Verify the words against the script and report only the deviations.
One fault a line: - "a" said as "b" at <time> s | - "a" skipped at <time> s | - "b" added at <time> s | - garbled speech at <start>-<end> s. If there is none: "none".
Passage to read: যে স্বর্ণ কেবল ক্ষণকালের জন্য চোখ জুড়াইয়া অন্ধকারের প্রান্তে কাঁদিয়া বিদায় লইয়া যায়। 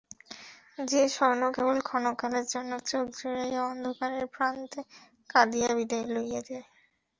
none